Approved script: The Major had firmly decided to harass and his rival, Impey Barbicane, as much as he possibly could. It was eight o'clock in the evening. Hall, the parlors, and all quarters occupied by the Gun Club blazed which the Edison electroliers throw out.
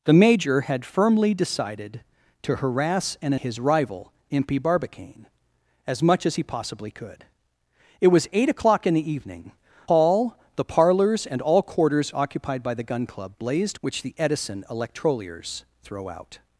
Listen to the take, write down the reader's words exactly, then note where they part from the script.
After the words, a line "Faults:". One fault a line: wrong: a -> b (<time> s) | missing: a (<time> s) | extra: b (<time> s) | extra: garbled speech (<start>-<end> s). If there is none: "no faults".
The Major had firmly decided to harass and his rival, Impey Barbicane, as much as he possibly could. It was eight o'clock in the evening. Hall, the parlors, and all quarters occupied by the Gun Club blazed which the Edison electroliers throw out.
Faults:
no faults